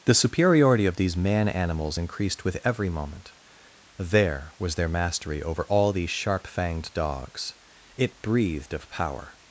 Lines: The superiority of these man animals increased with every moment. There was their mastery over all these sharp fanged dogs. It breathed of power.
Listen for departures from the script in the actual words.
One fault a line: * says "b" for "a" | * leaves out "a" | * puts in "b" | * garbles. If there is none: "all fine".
all fine